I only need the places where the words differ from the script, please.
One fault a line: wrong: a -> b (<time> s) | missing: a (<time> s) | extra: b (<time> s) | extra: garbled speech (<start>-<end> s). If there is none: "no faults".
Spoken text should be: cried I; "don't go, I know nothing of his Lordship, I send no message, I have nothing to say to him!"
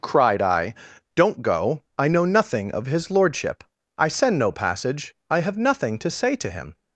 wrong: message -> passage (4.5 s)